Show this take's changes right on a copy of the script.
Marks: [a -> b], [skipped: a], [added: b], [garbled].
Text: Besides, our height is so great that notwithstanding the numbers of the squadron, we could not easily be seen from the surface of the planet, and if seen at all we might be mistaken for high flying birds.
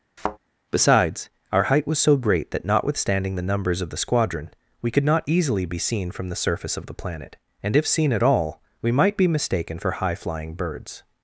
Besides, our height [is -> was] so great that notwithstanding the numbers of the squadron, we could not easily be seen from the surface of the planet, and if seen at all we might be mistaken for high flying birds.